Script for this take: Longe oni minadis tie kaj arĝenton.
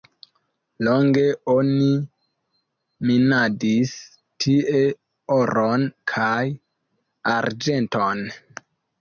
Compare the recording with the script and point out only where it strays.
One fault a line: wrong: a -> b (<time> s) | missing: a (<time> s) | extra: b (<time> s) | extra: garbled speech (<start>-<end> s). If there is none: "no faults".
extra: oron (5.4 s)